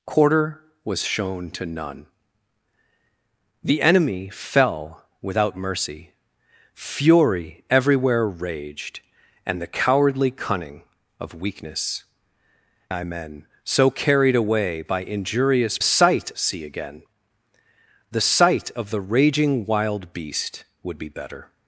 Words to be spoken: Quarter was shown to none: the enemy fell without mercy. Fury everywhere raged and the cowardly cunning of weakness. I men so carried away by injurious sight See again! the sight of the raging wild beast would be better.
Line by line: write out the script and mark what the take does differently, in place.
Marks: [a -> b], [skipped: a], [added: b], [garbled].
Quarter was shown to none: the enemy fell without mercy. Fury everywhere raged and the cowardly cunning of weakness. I men so carried away by injurious sight See again! the sight of the raging wild beast would be better.